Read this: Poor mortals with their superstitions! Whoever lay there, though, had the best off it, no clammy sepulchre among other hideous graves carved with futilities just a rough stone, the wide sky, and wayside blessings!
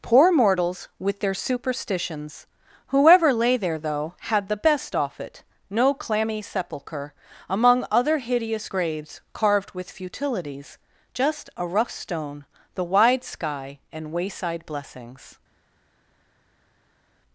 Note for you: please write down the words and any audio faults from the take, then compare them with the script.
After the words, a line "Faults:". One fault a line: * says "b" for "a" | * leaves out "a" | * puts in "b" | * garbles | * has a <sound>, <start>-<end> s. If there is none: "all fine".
Poor mortals with their superstitions! Whoever lay there, though, had the best off it, no clammy sepulchre among other hideous graves carved with futilities just a rough stone, the wide sky, and wayside blessings!
Faults:
all fine